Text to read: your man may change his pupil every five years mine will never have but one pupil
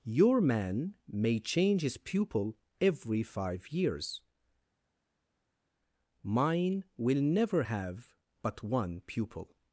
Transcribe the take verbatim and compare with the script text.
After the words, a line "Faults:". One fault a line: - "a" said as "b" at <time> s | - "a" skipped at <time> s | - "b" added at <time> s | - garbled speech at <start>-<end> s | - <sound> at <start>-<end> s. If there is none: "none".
your man may change his pupil every five years mine will never have but one pupil
Faults:
none